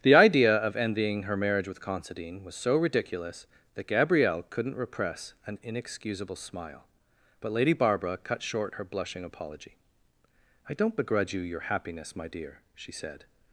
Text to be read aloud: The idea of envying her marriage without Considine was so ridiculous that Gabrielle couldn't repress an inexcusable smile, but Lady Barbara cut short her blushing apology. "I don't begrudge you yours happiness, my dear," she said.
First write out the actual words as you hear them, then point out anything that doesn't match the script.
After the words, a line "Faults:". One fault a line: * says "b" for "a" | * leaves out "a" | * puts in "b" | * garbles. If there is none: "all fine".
The idea of envying her marriage with Considine was so ridiculous that Gabrielle couldn't repress an inexcusable smile, but Lady Barbara cut short her blushing apology. "I don't begrudge you your happiness, my dear," she said.
Faults:
* says "with" for "without"
* says "your" for "yours"